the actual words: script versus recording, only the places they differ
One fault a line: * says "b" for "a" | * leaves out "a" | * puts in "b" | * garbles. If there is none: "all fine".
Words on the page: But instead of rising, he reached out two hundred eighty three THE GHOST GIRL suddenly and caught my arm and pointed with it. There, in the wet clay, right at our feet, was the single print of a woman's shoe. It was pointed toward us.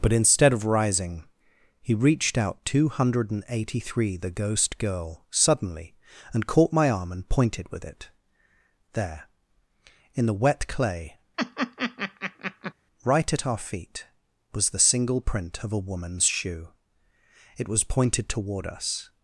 all fine